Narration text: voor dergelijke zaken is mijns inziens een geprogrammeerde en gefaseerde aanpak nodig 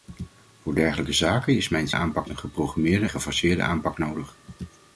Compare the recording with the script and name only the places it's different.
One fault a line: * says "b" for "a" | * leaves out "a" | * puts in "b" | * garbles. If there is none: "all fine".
* says "aanpak" for "inziens"
* leaves out "en"